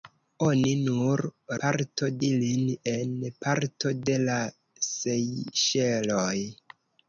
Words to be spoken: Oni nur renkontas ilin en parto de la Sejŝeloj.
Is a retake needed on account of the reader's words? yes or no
yes